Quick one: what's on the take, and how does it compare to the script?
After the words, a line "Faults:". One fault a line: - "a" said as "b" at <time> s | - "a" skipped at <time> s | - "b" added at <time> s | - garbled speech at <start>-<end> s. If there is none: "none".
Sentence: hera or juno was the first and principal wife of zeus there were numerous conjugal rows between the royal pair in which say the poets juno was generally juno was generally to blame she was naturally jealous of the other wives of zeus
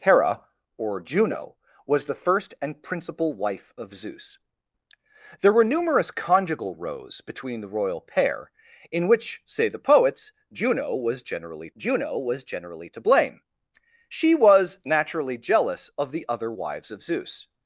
hera or juno was the first and principal wife of zeus there were numerous conjugal rows between the royal pair in which say the poets juno was generally juno was generally to blame she was naturally jealous of the other wives of zeus
Faults:
none